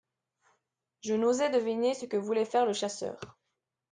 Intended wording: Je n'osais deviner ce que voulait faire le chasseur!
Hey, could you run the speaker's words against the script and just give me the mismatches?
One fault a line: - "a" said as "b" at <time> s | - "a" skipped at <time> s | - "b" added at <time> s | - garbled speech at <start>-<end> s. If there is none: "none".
none